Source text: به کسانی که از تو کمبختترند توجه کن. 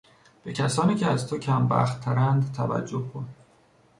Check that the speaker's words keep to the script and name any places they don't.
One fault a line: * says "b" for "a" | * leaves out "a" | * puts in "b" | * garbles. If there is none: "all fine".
all fine